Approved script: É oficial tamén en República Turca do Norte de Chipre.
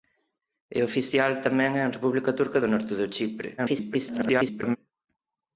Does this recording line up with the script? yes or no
no